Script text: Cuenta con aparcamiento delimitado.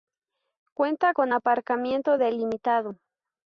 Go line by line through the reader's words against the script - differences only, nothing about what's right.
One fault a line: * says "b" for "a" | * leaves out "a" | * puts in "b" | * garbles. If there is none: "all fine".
all fine